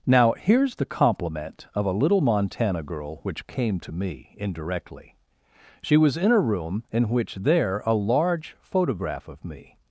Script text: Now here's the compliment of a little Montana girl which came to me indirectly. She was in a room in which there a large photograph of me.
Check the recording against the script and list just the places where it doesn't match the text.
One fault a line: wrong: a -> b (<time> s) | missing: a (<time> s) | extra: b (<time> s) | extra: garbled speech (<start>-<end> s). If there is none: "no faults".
no faults